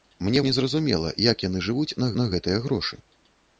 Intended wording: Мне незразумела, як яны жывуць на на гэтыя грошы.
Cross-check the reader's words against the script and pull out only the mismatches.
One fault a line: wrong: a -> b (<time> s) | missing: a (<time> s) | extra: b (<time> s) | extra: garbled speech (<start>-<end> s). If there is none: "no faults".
no faults